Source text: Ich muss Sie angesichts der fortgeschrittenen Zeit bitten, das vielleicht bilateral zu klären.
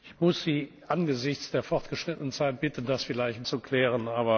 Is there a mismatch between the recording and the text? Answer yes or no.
yes